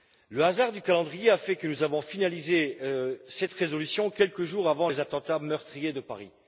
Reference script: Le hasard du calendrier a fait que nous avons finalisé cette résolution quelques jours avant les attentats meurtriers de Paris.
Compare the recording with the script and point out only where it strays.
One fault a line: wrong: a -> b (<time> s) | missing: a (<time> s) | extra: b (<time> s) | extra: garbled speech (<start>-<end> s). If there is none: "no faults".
no faults